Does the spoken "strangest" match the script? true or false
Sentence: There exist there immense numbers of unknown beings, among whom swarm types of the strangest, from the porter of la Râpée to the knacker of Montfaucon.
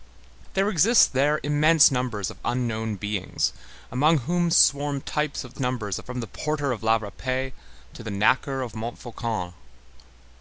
false